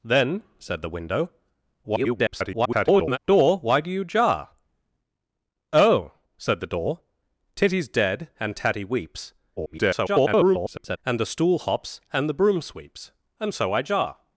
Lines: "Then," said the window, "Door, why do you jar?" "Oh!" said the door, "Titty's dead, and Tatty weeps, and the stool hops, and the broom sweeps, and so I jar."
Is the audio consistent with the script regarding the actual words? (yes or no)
no